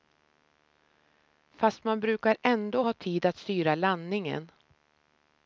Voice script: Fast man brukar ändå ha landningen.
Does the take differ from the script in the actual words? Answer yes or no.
yes